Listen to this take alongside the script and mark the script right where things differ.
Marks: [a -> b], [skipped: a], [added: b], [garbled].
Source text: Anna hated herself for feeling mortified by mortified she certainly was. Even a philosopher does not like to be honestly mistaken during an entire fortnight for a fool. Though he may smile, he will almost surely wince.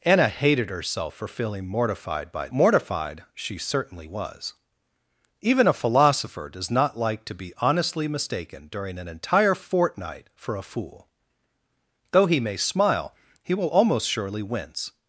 Anna hated herself for feeling mortified by mortified she certainly was. Even a philosopher does not like to be honestly mistaken during an entire fortnight for a fool. Though he may smile, he will almost surely wince.